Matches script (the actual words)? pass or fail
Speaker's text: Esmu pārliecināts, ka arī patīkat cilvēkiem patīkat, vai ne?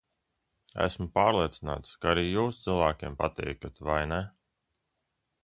fail